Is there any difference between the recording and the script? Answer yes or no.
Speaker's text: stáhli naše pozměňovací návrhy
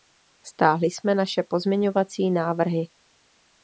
yes